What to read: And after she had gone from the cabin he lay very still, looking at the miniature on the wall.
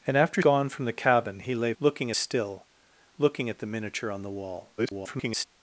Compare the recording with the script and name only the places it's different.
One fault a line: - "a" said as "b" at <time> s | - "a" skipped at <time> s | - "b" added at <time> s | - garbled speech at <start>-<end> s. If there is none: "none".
- "she had" skipped at 0.4 s
- "very" said as "looking" at 1.8 s
- garbled speech at 4.8-5.4 s